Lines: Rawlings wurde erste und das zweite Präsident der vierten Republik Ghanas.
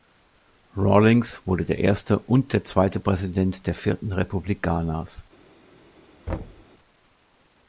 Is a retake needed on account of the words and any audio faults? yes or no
yes